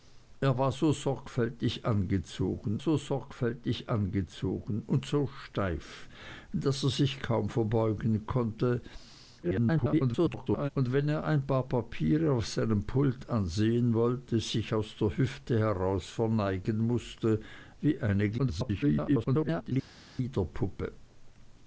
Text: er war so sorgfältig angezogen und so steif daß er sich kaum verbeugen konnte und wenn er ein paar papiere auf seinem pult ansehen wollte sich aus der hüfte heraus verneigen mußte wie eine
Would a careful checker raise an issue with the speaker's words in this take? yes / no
yes